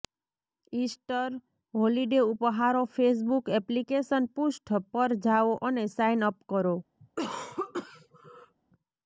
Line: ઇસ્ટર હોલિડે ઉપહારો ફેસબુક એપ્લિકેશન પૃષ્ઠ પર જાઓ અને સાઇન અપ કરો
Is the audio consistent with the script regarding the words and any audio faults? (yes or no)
no